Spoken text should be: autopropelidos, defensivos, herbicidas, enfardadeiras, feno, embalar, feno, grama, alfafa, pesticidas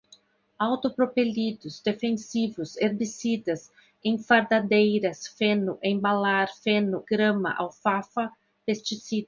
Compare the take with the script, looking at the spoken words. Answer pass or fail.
pass